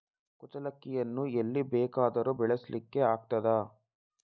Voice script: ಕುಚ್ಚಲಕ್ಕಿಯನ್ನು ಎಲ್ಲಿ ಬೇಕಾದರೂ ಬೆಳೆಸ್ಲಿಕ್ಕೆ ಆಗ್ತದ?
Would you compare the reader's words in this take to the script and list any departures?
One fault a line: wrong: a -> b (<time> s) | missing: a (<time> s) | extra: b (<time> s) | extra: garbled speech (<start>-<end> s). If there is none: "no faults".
no faults